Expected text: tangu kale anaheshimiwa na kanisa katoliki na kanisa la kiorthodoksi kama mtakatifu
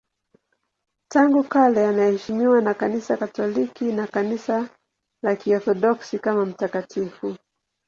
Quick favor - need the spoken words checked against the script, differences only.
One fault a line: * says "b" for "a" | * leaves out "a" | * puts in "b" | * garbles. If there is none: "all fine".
all fine